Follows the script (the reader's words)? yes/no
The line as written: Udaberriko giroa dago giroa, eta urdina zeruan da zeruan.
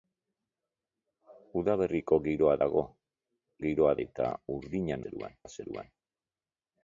yes